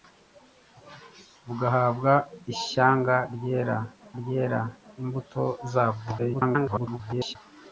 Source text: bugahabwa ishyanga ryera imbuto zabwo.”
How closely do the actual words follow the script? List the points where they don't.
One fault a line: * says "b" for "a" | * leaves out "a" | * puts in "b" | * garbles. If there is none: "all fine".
* puts in "ryera"
* garbles